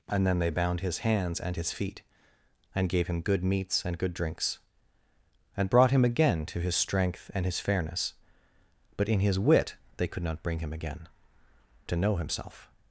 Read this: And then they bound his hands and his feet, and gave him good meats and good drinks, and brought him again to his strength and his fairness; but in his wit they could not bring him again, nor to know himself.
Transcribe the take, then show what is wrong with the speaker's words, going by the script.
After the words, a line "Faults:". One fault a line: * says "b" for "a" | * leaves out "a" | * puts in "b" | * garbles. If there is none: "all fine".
And then they bound his hands and his feet, and gave him good meats and good drinks, and brought him again to his strength and his fairness; but in his wit they could not bring him again, to know himself.
Faults:
* leaves out "nor"